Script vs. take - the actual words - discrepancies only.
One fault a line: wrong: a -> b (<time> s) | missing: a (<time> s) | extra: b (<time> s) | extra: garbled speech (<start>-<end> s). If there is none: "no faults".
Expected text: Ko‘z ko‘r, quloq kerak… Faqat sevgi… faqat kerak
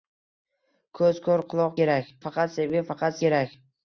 no faults